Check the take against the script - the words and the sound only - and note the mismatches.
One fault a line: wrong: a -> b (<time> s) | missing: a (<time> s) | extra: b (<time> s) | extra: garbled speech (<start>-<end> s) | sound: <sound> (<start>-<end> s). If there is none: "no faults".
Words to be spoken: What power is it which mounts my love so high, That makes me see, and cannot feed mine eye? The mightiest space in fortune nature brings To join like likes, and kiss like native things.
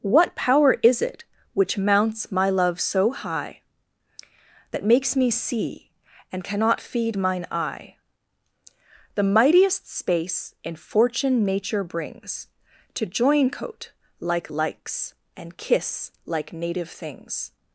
extra: coat (13.5 s)